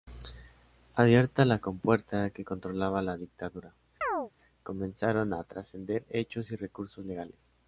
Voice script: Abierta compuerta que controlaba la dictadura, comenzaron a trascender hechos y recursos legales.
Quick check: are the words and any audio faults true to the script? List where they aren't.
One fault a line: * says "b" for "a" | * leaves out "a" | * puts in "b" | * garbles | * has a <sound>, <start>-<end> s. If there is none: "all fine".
* puts in "la"
* has a chirp, 4.0-4.3 s